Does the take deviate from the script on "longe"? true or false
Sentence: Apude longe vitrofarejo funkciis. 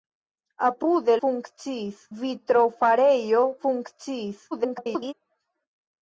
true